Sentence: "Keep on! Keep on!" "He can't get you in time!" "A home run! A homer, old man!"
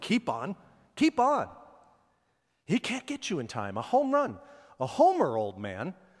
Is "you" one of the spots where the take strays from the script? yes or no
no